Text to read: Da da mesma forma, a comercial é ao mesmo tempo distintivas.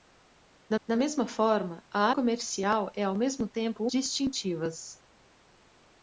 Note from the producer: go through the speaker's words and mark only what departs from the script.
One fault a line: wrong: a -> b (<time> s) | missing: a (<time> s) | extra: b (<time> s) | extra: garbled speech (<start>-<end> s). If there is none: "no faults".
no faults